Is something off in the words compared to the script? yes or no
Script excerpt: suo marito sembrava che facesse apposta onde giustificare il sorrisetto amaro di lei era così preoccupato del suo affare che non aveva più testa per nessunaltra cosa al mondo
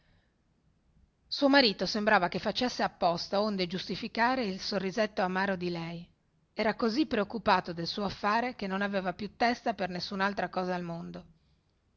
no